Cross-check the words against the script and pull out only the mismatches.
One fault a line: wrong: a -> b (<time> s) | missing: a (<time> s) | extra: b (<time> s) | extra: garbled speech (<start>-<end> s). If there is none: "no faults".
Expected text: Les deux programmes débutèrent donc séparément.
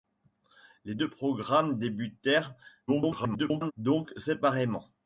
extra: garbled speech (2.9-3.7 s)